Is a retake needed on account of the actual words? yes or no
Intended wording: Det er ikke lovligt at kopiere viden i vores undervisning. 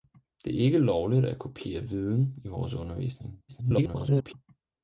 yes